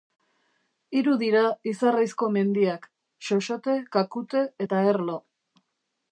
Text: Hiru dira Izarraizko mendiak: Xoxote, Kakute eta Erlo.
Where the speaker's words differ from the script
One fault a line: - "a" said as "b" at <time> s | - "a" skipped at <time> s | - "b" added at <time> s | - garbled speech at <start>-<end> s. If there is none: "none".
none